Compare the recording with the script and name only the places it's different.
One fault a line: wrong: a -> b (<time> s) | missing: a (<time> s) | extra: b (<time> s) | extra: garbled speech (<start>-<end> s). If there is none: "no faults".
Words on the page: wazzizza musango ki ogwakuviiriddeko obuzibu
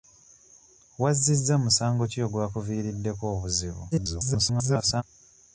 extra: garbled speech (3.9-5.0 s)